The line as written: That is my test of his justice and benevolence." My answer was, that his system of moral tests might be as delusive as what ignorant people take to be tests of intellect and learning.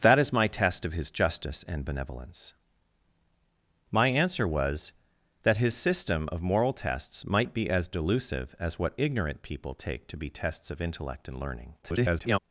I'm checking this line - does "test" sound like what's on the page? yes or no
yes